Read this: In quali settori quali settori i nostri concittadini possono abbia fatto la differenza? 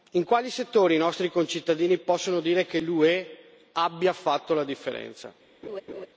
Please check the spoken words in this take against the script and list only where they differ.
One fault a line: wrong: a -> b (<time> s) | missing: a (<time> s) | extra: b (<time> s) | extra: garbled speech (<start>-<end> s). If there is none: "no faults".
missing: quali settori (0.9 s)
extra: dire che l'UE (2.4 s)